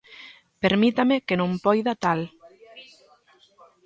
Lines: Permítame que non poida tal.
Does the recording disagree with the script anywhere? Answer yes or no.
no